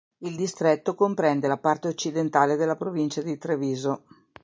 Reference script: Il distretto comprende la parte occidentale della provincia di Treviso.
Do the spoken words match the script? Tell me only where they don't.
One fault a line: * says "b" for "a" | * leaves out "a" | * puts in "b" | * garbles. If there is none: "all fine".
all fine